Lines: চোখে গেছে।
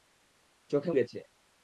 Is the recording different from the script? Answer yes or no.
no